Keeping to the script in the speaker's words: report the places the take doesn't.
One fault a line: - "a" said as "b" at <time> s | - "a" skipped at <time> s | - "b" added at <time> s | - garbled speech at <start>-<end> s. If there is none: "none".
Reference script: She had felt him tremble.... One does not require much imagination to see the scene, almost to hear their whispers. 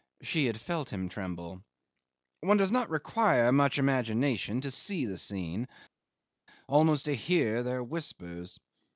none